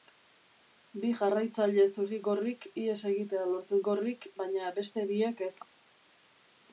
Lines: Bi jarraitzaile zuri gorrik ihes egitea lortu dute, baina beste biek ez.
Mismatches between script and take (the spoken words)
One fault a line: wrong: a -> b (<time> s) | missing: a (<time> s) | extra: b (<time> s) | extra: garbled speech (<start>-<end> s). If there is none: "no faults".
wrong: dute -> gorrik (3.9 s)